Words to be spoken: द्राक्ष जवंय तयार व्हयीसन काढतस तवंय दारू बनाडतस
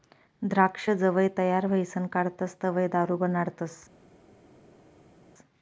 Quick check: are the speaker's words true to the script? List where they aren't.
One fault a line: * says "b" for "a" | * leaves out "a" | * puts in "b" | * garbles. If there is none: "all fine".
all fine